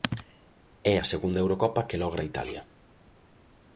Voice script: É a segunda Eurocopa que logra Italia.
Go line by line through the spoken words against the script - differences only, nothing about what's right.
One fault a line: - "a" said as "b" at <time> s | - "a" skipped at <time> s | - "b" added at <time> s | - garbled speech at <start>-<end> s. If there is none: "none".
none